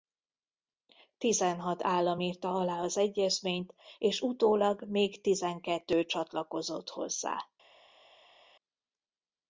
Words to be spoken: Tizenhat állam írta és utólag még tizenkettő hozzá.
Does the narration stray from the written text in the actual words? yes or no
yes